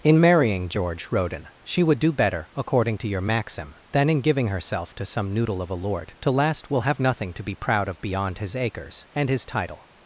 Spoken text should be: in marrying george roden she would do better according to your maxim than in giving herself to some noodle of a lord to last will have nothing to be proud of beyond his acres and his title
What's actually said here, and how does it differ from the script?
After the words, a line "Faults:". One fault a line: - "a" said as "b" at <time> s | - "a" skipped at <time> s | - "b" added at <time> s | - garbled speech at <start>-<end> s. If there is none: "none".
in marrying george roden she would do better according to your maxim than in giving herself to some noodle of a lord to last will have nothing to be proud of beyond his acres and his title
Faults:
none